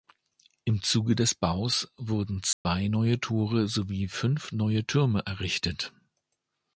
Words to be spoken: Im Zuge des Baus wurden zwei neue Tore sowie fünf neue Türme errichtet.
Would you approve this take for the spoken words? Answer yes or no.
yes